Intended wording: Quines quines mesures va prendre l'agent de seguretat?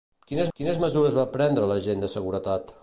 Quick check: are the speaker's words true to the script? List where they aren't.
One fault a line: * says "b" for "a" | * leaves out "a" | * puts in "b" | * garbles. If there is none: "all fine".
all fine